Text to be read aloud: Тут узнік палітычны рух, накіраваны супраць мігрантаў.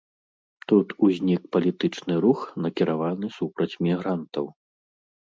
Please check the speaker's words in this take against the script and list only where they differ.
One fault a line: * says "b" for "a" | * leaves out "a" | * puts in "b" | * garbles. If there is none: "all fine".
all fine